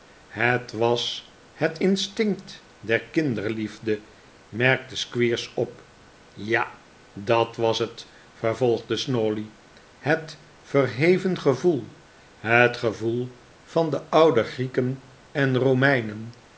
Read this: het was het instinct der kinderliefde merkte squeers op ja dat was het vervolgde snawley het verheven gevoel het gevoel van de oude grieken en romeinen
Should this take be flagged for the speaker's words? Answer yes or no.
no